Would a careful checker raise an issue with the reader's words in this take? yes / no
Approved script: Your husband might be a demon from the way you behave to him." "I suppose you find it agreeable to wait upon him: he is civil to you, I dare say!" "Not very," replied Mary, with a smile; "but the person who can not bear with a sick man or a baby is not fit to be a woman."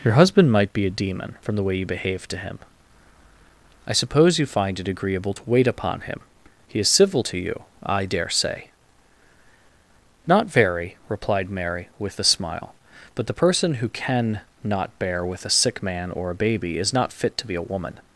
no